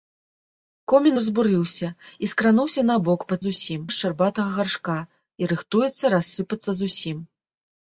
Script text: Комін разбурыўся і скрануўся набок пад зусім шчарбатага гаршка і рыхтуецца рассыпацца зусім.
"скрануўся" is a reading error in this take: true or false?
false